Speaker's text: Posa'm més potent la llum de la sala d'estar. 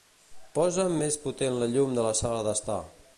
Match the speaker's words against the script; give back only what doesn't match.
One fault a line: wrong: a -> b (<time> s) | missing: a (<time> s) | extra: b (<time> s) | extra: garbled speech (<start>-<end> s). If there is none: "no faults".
no faults